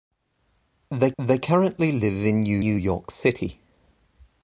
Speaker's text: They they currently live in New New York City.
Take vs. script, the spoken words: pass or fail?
pass